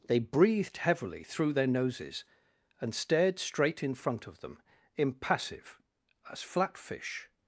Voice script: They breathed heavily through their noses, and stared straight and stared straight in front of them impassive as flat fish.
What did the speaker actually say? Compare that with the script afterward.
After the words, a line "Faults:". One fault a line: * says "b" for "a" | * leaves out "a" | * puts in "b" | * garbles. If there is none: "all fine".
They breathed heavily through their noses, and stared straight in front of them impassive as flat fish.
Faults:
* leaves out "and stared straight"